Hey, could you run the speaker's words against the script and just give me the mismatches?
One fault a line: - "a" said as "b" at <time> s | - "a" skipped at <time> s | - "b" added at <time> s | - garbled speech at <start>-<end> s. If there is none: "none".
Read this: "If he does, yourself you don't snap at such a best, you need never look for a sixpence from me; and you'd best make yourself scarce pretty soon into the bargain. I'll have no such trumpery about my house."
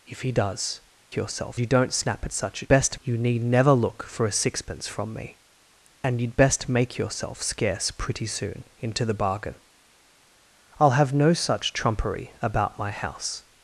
none